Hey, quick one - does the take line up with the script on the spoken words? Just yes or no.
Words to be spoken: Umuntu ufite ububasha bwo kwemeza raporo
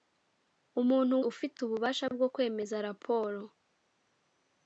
yes